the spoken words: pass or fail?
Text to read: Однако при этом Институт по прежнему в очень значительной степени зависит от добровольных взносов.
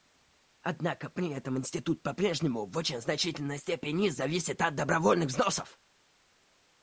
pass